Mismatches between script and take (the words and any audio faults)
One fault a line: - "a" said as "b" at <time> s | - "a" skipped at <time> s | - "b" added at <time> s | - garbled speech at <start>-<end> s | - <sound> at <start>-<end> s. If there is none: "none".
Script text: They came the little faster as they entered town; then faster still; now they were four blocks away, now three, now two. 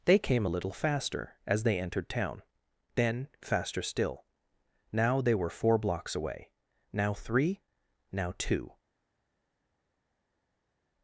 - "the" said as "a" at 0.4 s